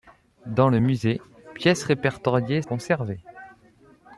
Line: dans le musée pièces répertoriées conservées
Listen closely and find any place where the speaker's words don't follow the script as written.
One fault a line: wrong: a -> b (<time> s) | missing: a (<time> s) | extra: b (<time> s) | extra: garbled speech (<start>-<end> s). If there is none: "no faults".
no faults